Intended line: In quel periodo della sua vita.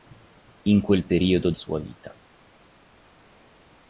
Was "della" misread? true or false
true